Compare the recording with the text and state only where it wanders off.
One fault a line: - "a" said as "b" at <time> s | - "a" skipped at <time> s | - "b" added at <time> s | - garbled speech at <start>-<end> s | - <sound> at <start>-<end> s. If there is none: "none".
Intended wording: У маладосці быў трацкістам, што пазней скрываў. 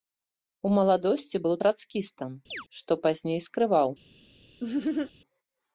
- chirp at 2.5-2.7 s
- laugh at 4.6-5.1 s